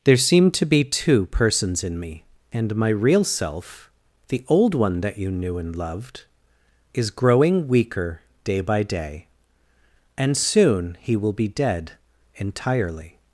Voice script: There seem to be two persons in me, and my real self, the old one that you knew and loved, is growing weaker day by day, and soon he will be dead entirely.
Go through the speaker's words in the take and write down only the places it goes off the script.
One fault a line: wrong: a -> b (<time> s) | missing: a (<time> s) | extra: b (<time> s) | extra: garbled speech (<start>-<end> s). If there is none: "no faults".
no faults